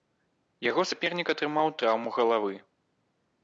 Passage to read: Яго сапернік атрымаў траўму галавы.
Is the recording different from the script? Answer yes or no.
no